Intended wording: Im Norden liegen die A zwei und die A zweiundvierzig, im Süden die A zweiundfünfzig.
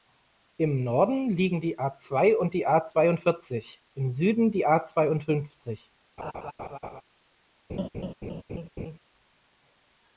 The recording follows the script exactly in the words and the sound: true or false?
false